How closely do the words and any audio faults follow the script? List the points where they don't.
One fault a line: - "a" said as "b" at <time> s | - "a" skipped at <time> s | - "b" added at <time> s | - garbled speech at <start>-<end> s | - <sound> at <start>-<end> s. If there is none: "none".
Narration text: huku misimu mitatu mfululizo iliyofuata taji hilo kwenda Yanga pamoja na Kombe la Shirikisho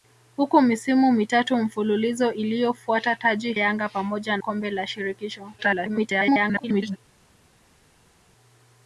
- "hilo kwenda" skipped at 3.5 s
- "na" skipped at 4.4 s
- garbled speech at 5.6-7.0 s